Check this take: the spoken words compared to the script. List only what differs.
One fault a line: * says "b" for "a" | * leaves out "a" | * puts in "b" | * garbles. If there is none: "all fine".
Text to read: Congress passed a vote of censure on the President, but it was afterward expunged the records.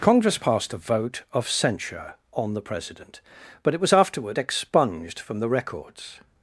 * puts in "from"